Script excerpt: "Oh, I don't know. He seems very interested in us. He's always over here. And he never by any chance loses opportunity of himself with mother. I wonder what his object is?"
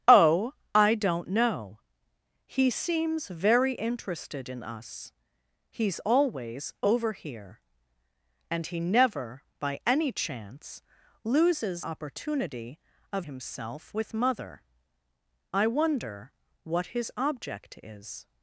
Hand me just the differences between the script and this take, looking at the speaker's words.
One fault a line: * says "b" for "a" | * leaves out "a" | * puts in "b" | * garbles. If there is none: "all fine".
all fine